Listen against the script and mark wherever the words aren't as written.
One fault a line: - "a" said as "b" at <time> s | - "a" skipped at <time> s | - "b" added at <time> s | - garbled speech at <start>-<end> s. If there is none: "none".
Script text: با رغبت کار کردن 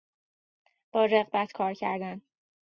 none